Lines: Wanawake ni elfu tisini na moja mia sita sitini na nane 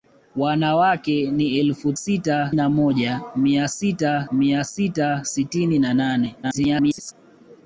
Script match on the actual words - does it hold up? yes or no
no